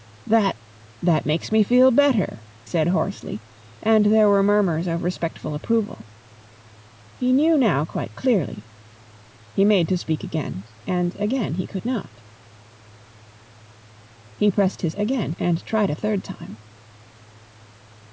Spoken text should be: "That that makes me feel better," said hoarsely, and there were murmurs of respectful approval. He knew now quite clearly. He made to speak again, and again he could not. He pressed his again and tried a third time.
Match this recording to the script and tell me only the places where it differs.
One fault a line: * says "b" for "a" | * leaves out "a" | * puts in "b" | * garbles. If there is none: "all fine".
all fine